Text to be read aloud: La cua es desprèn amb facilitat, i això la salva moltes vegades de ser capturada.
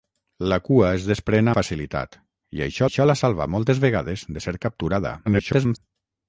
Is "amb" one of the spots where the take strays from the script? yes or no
yes